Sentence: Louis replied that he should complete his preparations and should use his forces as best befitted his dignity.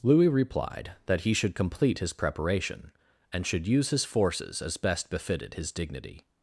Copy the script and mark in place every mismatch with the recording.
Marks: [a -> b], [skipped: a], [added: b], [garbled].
Louis replied that he should complete his [preparations -> preparation] and should use his forces as best befitted his dignity.